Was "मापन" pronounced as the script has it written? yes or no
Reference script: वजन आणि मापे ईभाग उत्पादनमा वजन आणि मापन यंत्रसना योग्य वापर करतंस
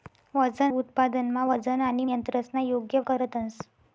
no